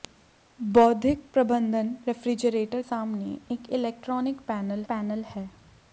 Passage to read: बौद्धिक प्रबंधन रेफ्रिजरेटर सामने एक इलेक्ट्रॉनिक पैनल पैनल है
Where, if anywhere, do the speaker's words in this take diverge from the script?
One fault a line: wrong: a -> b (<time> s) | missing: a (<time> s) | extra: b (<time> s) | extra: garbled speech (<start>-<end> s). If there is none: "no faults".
no faults